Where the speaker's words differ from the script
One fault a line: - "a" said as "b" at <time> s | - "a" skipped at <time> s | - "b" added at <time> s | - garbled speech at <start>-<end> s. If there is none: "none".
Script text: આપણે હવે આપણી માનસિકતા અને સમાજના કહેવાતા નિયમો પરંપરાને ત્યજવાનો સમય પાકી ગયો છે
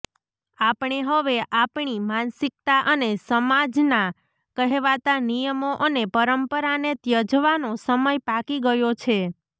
- "અને" added at 5.8 s